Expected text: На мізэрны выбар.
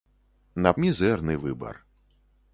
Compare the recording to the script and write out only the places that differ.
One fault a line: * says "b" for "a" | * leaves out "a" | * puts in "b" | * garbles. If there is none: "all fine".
all fine